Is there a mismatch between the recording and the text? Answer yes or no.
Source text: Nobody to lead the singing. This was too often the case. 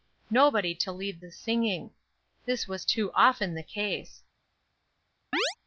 no